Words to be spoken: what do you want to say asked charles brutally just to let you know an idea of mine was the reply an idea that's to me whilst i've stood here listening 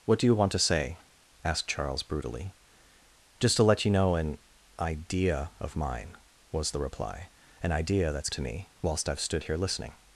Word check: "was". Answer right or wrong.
right